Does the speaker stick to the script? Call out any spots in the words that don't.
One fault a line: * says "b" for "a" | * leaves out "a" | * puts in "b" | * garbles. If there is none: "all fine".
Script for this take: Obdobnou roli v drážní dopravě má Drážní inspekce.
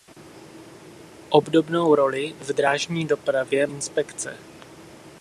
* leaves out "má Drážní"